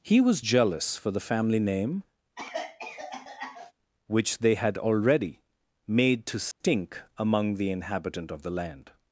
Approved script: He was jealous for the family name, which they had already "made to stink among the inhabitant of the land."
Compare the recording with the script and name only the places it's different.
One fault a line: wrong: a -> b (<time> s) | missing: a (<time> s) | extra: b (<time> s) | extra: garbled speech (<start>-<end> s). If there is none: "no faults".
no faults